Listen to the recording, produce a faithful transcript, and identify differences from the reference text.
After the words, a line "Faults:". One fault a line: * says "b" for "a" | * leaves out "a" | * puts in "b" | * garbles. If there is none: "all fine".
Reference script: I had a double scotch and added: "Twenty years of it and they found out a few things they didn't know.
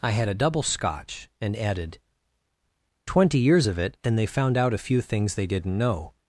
I had a double scotch and added: "Twenty years of it and they found out a few things they didn't know.
Faults:
all fine